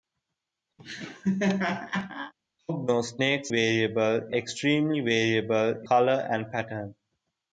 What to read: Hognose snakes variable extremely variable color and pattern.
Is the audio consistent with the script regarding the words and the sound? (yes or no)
no